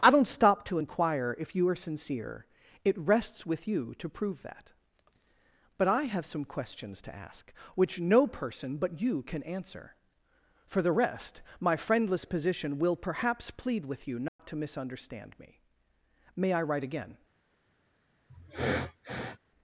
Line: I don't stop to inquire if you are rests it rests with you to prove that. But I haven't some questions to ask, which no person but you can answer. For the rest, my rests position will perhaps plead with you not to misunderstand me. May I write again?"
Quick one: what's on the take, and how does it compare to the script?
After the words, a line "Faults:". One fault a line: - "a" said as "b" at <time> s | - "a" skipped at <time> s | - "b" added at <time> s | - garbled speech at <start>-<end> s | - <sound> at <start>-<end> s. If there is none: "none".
I don't stop to inquire if you are sincere it rests with you to prove that. But I have some questions to ask, which no person but you can answer. For the rest, my friendless position will perhaps plead with you not to misunderstand me. May I write again?"
Faults:
- "rests" said as "sincere" at 1.8 s
- "haven't" said as "have" at 6.0 s
- "rests" said as "friendless" at 11.8 s
- dropout at 14.3-14.4 s
- sniff at 18.3-19.4 s